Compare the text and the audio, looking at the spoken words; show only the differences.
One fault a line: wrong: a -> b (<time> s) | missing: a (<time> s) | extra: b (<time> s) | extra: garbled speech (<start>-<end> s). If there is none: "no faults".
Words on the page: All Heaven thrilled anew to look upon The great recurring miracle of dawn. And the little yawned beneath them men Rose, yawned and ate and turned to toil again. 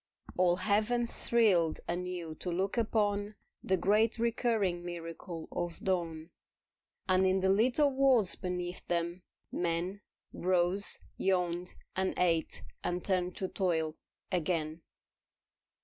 extra: in (7.2 s)
wrong: yawned -> worlds (7.9 s)